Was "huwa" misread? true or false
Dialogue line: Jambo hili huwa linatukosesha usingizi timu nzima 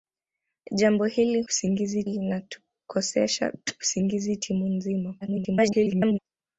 true